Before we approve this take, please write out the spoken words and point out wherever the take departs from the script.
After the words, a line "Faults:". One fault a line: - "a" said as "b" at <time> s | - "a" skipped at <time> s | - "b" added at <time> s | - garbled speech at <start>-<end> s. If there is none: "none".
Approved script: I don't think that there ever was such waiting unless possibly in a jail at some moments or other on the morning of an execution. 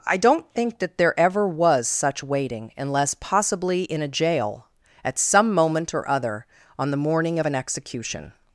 I don't think that there ever was such waiting unless possibly in a jail at some moment or other on the morning of an execution.
Faults:
- "moments" said as "moment" at 5.5 s